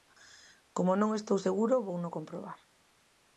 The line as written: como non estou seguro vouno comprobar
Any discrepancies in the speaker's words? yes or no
no